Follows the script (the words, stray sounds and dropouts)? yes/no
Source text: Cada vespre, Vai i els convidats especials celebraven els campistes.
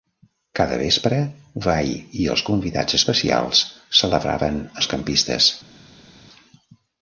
yes